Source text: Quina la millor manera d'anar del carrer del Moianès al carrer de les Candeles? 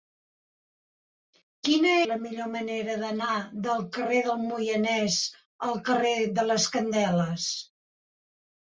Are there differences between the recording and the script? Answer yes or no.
no